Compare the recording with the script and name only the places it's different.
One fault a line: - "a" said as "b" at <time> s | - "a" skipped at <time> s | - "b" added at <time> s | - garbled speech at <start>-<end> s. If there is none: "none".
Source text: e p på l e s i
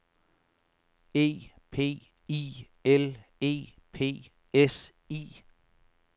- "på" said as "i" at 2.3 s
- "p" added at 3.9 s